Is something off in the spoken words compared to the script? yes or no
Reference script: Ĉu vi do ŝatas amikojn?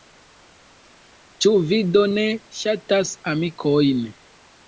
yes